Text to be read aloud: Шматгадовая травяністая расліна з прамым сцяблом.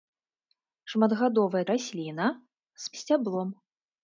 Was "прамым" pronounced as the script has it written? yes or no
no